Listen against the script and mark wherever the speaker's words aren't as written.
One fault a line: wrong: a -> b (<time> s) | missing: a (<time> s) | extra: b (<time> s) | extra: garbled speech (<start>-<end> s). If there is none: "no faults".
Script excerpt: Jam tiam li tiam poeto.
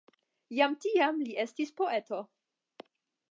wrong: tiam -> estis (1.4 s)